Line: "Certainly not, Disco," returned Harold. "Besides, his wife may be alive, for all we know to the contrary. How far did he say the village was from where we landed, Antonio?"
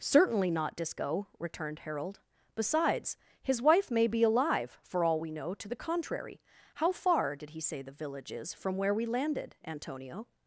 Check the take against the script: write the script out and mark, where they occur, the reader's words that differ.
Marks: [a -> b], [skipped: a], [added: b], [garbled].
"Certainly not, Disco," returned Harold. "Besides, his wife may be alive, for all we know to the contrary. How far did he say the village [was -> is] from where we landed, Antonio?"